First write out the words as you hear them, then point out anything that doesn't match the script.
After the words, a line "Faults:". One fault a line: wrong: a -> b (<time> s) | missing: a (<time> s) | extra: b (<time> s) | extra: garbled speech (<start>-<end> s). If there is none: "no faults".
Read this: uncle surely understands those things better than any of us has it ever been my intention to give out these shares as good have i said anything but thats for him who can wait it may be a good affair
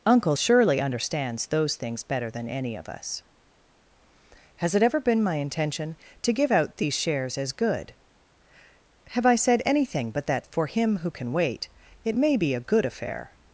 uncle surely understands those things better than any of us has it ever been my intention to give out these shares as good have i said anything but that for him who can wait it may be a good affair
Faults:
wrong: thats -> that (10.3 s)